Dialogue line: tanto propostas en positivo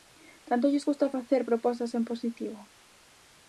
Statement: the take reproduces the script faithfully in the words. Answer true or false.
false